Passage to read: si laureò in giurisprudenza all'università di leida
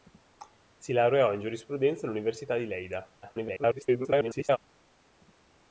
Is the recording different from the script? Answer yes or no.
yes